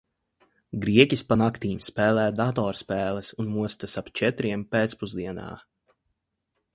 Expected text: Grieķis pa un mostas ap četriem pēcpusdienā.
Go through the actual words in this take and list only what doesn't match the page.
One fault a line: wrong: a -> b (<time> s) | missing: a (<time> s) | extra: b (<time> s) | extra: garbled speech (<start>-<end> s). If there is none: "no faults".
extra: naktīm spēlē datorspēles (1.4 s)